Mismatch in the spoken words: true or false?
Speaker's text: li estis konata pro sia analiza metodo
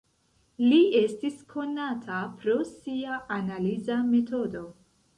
false